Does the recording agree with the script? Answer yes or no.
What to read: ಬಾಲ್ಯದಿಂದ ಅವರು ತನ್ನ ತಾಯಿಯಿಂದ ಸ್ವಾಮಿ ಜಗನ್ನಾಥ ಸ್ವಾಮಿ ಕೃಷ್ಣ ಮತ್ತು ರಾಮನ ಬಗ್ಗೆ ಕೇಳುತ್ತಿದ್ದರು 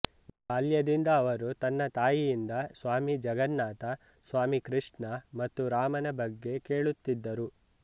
yes